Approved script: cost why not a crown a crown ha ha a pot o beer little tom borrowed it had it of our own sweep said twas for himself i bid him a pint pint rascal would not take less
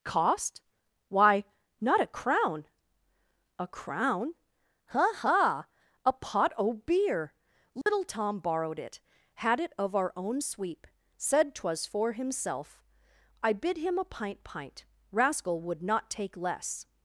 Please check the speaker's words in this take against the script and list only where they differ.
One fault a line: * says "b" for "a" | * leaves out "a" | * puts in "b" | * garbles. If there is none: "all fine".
all fine